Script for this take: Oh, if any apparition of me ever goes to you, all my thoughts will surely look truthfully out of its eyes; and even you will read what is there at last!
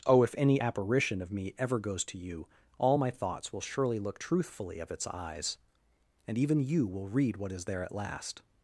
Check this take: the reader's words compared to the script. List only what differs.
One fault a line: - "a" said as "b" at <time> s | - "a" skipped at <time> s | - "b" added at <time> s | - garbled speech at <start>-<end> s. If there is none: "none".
- "out" skipped at 4.8 s